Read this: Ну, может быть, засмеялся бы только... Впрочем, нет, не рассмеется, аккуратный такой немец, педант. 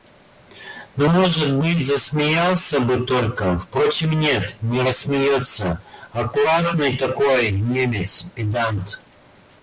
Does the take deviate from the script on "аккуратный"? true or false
false